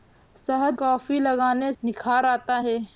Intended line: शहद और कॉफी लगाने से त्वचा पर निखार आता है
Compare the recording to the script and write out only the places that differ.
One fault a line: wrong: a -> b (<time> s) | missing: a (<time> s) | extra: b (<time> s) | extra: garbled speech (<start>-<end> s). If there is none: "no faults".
missing: और (0.8 s)
missing: से त्वचा पर (1.7 s)